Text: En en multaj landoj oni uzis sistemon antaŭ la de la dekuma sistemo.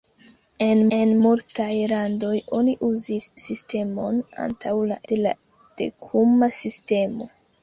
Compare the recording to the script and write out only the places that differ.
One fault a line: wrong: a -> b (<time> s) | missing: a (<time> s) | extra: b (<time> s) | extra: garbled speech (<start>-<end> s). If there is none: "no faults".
no faults